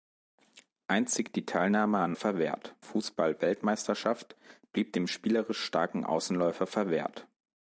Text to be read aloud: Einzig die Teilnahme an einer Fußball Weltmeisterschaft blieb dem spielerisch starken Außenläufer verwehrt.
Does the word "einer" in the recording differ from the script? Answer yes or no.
yes